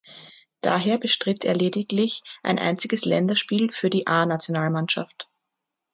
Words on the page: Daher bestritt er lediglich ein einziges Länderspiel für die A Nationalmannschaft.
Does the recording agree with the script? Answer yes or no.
yes